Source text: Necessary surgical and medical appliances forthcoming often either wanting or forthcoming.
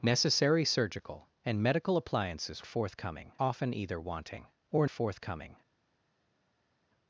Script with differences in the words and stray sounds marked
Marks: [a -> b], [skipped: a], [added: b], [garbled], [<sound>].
Necessary surgical and medical appliances forthcoming often either wanting or forthcoming.